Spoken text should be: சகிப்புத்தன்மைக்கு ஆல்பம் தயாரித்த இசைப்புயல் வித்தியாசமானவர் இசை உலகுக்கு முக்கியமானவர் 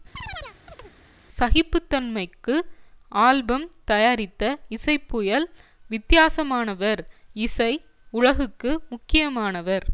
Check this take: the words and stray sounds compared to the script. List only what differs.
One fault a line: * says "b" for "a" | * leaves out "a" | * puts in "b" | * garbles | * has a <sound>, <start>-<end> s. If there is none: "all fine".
* has a chirp, 0.1-0.9 s